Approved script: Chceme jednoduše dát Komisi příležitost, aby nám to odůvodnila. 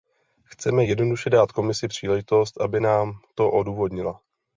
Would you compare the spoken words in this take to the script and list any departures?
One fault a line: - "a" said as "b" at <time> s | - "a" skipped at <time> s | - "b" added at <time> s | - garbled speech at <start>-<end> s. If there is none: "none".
none